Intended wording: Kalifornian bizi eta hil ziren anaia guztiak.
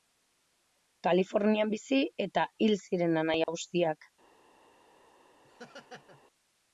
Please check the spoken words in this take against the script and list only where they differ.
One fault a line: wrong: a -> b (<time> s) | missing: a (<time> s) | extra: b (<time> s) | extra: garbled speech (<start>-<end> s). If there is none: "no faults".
no faults